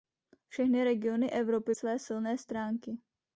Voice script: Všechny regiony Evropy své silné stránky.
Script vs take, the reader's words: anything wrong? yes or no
no